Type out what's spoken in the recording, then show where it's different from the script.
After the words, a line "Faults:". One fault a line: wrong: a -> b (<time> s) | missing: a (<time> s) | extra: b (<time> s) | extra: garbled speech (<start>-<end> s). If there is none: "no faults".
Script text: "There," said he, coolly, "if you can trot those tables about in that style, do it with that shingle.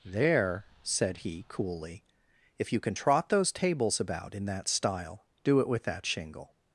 "There," said he, coolly, "if you can trot those tables about in that style, do it with that shingle.
Faults:
no faults